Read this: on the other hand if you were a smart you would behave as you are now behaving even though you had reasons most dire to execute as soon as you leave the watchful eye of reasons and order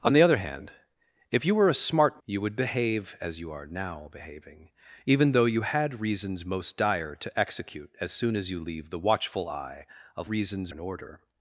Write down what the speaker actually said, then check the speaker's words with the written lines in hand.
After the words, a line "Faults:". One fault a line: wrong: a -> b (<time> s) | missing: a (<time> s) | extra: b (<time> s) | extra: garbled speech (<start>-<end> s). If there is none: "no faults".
on the other hand if you were a smart you would behave as you are now behaving even though you had reasons most dire to execute as soon as you leave the watchful eye of reasons and order
Faults:
no faults